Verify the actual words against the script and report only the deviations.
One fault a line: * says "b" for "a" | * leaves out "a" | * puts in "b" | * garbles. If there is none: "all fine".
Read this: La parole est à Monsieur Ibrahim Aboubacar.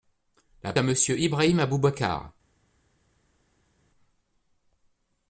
* leaves out "parole est"